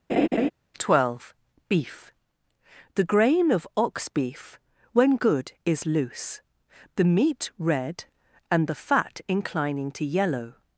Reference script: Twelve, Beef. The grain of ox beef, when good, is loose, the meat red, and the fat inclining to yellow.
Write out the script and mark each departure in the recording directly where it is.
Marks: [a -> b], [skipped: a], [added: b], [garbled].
Twelve, Beef. The grain of ox beef, when good, is loose, the meat red, and the fat inclining to yellow.